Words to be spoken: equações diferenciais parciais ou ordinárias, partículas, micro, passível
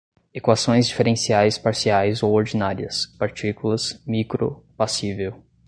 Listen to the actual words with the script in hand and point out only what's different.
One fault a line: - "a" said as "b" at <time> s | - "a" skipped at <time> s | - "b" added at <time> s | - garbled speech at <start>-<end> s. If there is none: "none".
none